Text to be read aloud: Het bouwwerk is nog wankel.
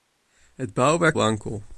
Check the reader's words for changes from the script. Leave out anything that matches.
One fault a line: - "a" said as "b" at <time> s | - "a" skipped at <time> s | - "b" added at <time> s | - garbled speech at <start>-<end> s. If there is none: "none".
- "is nog" skipped at 1.2 s